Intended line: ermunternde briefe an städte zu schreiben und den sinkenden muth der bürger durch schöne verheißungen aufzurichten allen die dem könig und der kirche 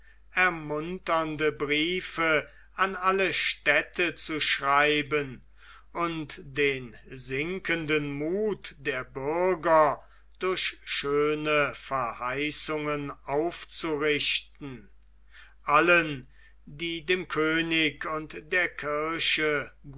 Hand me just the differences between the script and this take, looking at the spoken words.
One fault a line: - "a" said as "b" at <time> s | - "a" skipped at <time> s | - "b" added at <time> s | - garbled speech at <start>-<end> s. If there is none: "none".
- "alle" added at 3.0 s